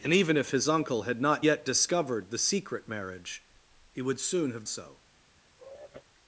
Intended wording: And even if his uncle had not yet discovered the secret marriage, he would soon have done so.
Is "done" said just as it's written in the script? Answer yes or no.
no